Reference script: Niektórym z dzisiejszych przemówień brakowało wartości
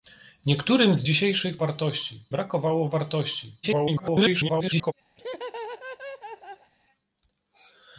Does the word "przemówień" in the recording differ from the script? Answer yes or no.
yes